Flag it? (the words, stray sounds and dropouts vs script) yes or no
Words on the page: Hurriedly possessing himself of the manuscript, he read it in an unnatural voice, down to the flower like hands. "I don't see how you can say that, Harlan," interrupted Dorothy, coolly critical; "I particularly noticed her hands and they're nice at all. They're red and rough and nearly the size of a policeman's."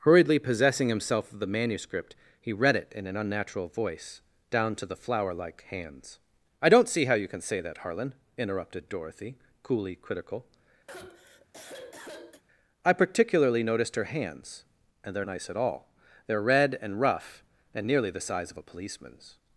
yes